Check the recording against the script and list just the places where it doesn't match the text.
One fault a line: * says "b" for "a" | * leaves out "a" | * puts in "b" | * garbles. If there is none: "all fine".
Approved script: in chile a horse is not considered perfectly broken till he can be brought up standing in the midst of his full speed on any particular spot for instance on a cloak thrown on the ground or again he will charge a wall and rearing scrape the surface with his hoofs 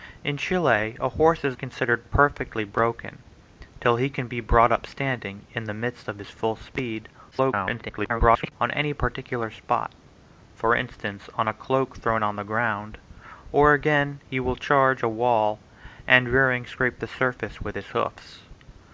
* leaves out "not"
* garbles